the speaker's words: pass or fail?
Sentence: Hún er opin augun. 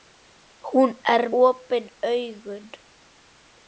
pass